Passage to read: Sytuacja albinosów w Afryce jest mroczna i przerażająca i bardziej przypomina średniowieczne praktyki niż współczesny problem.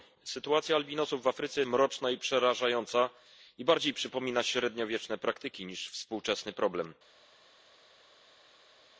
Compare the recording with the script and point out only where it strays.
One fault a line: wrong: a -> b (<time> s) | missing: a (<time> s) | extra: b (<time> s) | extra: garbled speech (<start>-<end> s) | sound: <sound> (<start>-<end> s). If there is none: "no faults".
missing: jest (1.6 s)